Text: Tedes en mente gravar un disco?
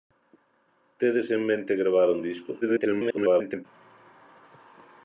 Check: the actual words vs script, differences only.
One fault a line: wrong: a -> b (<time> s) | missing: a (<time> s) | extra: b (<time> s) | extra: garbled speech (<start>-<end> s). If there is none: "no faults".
extra: garbled speech (2.6-3.7 s)